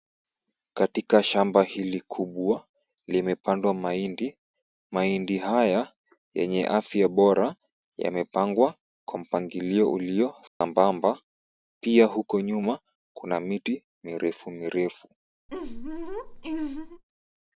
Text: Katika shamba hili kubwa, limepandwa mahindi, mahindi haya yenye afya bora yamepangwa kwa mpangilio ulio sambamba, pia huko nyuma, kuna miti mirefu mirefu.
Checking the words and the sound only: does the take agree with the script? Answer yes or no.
no